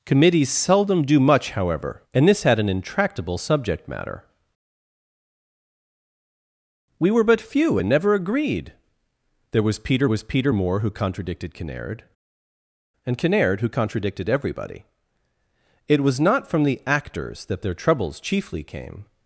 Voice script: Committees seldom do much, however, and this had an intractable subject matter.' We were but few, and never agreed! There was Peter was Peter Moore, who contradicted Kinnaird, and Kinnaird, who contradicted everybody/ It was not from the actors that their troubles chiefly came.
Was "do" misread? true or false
false